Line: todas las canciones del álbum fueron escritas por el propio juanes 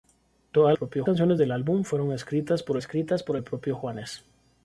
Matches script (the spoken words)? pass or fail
fail